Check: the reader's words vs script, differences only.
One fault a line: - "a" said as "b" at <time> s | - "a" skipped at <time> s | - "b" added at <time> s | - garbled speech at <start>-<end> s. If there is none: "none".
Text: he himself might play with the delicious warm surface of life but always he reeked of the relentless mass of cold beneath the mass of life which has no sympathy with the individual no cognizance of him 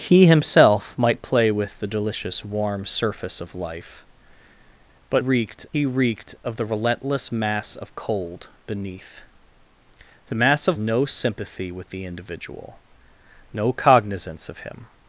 - "always" said as "reeked" at 5.2 s
- "life which has" skipped at 10.8 s